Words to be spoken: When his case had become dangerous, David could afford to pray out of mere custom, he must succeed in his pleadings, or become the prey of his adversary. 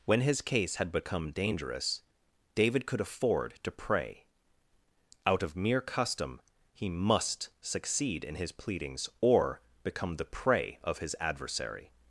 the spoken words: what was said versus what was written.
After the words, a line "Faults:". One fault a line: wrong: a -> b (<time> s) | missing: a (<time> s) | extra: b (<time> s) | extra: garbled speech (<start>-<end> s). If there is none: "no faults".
When his case had become dangerous, David could afford to pray out of mere custom, he must succeed in his pleadings, or become the prey of his adversary.
Faults:
no faults